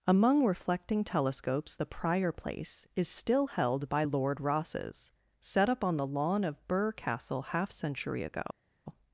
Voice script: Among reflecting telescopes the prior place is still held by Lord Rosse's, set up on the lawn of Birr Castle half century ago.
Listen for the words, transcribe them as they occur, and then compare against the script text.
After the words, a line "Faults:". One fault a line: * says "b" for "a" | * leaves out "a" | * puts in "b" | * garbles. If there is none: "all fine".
Among reflecting telescopes the prior place is still held by Lord Rosse's, set up on the lawn of Birr Castle half century ago.
Faults:
all fine